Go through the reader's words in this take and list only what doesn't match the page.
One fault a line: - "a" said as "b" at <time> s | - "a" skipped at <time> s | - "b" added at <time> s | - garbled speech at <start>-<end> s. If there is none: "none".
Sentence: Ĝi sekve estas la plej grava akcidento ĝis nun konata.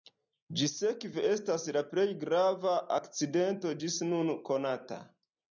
none